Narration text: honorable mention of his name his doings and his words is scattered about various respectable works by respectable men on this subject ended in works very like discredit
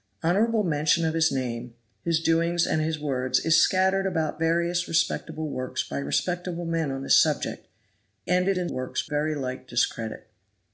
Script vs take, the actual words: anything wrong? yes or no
no